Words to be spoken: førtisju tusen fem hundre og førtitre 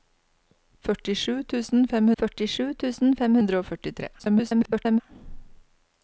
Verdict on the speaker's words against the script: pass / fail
fail